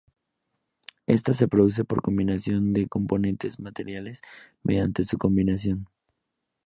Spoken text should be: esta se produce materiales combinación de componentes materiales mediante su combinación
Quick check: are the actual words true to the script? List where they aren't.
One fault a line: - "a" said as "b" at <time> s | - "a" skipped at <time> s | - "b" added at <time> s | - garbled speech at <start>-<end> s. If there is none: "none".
- "materiales" said as "por" at 1.9 s